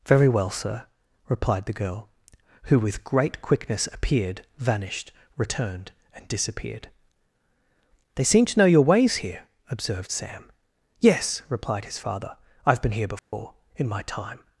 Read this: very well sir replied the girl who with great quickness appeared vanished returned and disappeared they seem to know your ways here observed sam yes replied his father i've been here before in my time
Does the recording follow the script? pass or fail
pass